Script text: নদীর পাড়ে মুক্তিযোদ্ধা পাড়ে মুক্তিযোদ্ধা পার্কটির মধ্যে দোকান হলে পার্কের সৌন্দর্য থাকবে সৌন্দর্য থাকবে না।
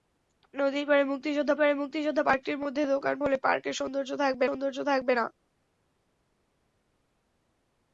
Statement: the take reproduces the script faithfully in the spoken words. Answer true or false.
true